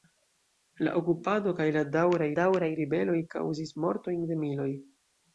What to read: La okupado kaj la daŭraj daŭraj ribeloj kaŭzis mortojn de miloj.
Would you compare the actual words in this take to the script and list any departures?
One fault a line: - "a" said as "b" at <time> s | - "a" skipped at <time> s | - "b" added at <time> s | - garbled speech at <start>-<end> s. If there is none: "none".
none